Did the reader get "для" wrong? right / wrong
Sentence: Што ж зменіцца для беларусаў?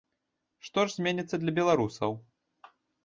right